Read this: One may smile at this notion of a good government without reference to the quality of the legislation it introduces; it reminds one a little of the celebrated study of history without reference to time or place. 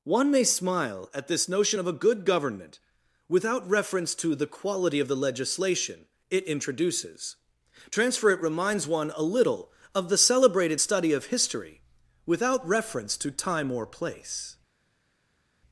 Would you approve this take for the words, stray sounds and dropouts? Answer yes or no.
no